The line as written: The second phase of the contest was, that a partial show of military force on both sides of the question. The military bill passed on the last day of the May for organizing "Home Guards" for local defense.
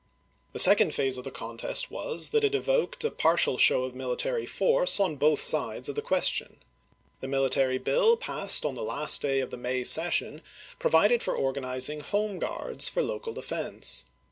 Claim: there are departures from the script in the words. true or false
true